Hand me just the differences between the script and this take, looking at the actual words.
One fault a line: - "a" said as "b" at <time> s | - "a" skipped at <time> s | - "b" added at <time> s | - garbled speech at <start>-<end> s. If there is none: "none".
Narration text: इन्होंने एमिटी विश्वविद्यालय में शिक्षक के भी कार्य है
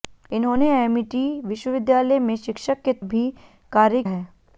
none